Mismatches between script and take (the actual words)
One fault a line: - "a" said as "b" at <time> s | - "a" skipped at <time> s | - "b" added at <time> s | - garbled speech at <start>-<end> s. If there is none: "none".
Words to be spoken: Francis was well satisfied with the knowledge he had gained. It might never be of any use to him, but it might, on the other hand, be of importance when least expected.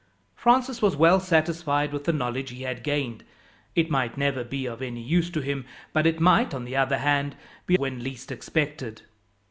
- "of importance" skipped at 7.8 s